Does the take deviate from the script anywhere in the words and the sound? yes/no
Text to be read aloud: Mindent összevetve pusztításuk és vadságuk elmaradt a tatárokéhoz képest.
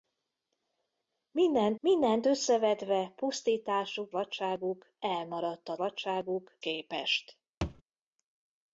yes